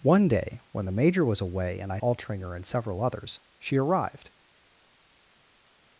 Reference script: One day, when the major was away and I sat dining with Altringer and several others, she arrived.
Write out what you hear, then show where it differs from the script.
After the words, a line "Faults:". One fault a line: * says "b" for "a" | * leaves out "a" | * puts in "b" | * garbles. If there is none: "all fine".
One day, when the major was away and I Altringer and several others, she arrived.
Faults:
* leaves out "sat dining with"